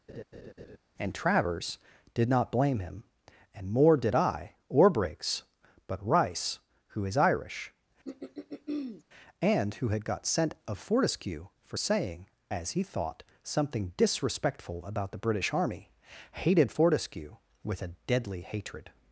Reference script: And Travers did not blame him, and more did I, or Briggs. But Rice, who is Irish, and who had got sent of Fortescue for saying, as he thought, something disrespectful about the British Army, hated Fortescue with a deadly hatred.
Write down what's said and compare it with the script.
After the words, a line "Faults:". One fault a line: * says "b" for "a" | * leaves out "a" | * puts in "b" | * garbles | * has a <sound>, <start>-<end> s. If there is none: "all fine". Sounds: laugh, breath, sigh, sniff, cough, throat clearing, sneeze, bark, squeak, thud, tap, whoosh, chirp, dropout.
And Travers did not blame him, and more did I, or Briggs. But Rice, who is Irish, and who had got sent of Fortescue for saying, as he thought, something disrespectful about the British Army, hated Fortescue with a deadly hatred.
Faults:
* has a laugh, 0.1-0.8 s
* has a throat clearing, 8.0-9.0 s